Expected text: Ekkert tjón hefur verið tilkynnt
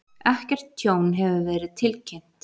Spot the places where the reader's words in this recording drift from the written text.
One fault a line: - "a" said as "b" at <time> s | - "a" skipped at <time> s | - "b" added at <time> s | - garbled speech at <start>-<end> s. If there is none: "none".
none